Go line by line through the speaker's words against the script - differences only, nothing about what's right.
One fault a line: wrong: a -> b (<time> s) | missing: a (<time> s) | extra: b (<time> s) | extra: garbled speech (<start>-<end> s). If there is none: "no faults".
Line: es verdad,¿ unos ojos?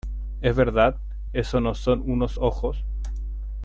extra: eso no son (1.3 s)